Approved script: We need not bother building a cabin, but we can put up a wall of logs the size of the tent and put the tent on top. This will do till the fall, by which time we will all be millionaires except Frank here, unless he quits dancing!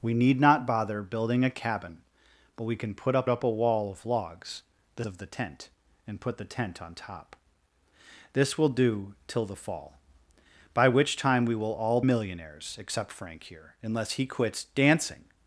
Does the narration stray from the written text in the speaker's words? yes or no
yes